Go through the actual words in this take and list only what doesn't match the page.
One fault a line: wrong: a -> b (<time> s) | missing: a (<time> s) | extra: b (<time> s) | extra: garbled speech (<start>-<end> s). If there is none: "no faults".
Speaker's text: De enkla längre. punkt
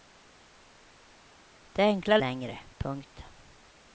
no faults